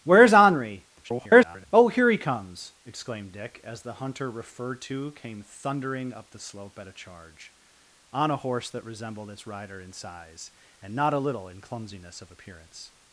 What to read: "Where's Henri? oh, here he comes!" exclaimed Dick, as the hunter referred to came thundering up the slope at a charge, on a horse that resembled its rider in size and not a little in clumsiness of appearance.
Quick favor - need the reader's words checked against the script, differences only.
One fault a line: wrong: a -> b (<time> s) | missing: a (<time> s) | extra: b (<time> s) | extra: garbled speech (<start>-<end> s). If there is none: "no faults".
extra: garbled speech (1.0-1.7 s)